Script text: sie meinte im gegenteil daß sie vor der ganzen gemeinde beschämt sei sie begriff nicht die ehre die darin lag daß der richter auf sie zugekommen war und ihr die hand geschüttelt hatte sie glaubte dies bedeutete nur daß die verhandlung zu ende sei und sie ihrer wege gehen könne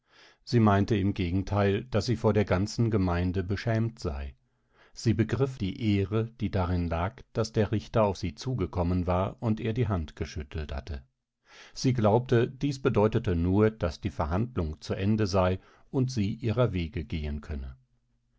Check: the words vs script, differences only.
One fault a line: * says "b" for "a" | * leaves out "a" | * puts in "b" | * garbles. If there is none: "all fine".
* leaves out "nicht"